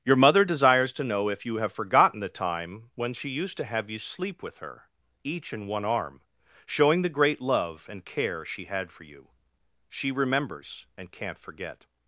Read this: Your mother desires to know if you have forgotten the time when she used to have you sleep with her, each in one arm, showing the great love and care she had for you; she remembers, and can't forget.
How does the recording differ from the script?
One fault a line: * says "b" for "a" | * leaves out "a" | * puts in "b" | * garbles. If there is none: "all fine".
all fine